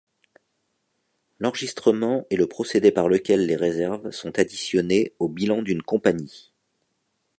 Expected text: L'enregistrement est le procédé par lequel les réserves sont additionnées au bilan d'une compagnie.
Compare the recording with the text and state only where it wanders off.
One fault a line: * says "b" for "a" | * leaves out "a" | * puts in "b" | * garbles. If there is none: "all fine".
all fine